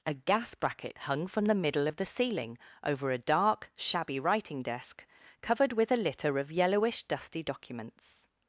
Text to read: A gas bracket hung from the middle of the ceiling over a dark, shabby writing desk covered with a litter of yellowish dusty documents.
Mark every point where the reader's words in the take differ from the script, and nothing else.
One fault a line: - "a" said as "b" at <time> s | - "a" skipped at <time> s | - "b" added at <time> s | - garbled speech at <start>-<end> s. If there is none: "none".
none